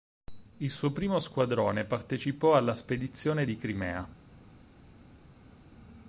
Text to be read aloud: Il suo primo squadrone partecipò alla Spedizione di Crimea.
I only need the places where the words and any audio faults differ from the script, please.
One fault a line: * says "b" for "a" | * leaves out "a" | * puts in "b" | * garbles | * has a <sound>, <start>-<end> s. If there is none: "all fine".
all fine